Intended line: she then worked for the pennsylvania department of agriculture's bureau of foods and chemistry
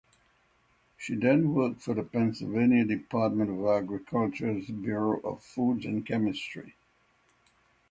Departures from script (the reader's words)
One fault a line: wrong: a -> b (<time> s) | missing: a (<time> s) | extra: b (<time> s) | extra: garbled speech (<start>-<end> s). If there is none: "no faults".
no faults